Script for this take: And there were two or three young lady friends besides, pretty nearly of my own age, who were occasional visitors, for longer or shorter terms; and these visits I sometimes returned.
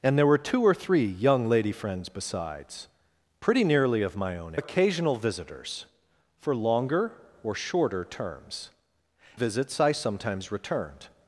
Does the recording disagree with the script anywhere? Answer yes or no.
yes